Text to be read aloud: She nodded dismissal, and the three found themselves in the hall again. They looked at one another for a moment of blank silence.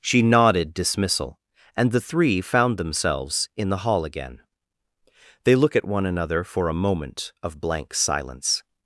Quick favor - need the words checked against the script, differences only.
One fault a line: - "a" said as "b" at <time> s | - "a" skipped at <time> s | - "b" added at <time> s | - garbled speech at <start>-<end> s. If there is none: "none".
- "looked" said as "look" at 5.5 s